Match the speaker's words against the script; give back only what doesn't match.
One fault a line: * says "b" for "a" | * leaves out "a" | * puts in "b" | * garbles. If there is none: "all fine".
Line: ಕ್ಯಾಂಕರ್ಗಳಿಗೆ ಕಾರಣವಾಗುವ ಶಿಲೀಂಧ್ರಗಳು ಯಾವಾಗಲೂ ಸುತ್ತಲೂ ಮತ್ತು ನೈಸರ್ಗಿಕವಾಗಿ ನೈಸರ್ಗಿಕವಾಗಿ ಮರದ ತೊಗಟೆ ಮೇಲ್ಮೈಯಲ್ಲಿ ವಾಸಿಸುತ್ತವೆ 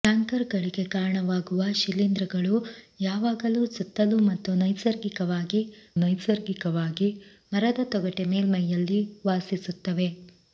all fine